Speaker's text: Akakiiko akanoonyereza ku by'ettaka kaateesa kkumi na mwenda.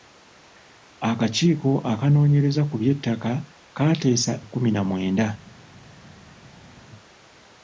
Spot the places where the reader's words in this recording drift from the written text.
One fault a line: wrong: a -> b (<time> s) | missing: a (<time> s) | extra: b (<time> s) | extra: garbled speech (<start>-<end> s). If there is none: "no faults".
no faults